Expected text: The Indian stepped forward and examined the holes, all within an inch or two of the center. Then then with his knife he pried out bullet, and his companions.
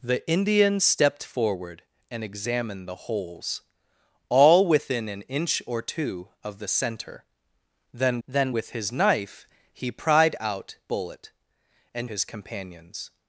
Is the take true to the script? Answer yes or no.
yes